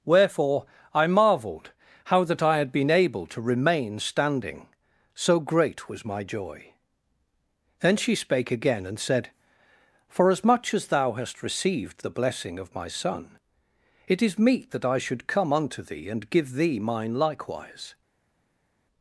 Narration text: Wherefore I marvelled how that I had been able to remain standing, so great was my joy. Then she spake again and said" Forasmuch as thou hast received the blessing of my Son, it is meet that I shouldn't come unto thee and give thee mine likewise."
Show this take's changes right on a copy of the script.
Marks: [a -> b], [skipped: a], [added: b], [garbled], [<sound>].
Wherefore I marvelled how that I had been able to remain standing, so great was my joy. Then she spake again and said" Forasmuch as thou hast received the blessing of my Son, it is meet that I [shouldn't -> should] come unto thee and give thee mine likewise."